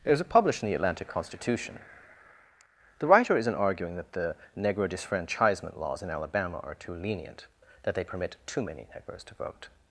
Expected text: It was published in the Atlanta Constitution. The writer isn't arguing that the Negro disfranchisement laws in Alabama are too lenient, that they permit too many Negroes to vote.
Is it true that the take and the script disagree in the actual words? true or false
false